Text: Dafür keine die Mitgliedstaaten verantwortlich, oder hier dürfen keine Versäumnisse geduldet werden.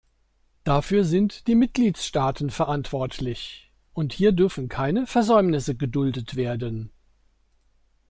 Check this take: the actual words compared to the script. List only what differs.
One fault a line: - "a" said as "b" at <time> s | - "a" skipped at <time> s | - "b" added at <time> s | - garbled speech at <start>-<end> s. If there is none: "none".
- "keine" said as "sind" at 1.1 s
- "oder" said as "und" at 3.9 s